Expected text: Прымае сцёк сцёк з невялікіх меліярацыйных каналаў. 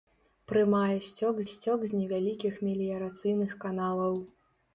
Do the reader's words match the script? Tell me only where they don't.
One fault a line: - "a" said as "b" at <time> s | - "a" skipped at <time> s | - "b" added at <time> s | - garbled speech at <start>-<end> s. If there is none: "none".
none